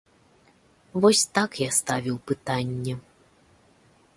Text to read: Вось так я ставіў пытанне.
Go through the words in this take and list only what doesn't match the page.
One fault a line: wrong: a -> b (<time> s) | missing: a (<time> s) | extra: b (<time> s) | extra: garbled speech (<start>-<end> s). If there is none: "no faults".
no faults